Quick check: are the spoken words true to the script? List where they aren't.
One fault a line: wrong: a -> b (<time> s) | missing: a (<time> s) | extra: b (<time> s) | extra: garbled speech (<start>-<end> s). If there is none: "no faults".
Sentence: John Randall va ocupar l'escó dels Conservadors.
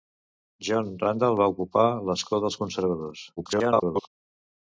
extra: garbled speech (3.4-4.1 s)